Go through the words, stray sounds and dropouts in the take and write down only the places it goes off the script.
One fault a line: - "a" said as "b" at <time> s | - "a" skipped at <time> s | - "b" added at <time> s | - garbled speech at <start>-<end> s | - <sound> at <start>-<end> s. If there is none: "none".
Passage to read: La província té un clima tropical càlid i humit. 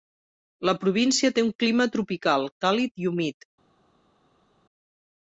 none